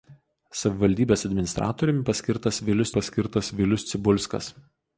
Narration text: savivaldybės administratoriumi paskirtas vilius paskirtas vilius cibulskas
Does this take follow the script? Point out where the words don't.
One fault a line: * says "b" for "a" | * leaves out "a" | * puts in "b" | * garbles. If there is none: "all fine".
all fine